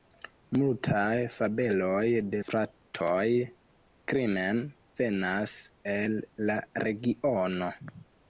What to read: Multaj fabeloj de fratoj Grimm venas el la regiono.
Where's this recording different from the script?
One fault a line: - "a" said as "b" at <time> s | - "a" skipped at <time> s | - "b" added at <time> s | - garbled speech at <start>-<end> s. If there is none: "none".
none